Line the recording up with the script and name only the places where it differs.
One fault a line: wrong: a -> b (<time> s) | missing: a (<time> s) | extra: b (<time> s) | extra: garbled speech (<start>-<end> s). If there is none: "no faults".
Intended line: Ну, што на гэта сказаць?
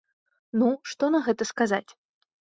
no faults